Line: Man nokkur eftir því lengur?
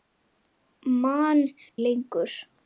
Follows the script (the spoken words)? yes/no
no